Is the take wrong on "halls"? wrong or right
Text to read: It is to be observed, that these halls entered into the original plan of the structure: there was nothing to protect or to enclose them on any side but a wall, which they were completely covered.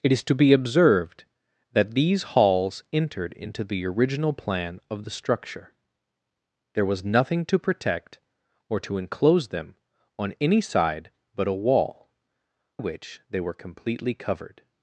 right